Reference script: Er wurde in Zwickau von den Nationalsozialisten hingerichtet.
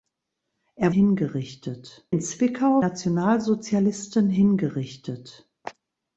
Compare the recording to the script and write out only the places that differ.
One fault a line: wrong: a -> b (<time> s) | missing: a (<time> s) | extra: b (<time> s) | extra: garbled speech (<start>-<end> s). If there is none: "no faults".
wrong: wurde -> hingerichtet (0.9 s)
missing: von den (2.8 s)